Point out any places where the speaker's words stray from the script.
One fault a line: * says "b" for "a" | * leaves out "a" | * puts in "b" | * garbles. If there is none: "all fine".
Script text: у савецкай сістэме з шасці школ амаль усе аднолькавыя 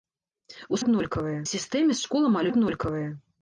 * says "аднолькавыя" for "савецкай"
* leaves out "шасці"
* leaves out "усе"